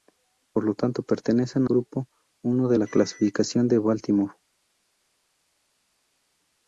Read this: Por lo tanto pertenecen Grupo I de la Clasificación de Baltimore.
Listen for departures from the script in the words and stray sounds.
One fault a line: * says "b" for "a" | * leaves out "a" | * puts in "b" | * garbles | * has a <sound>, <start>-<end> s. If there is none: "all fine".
all fine